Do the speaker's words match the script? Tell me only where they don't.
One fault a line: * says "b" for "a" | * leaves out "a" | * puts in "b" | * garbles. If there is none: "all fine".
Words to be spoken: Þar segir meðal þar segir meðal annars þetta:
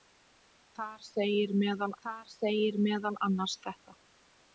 all fine